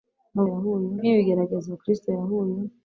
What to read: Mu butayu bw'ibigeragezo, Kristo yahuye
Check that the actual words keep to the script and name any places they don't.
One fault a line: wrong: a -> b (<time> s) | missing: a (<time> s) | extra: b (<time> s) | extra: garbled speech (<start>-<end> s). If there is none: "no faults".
wrong: butayu -> yahuye (0.5 s)